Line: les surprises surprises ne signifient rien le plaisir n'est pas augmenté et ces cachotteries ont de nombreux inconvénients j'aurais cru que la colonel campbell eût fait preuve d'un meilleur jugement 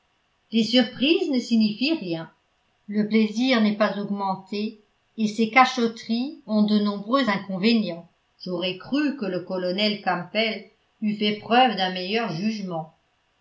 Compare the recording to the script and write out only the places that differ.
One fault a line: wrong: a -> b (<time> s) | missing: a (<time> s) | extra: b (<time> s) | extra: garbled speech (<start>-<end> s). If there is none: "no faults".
missing: surprises (1.3 s)
wrong: la -> le (9.3 s)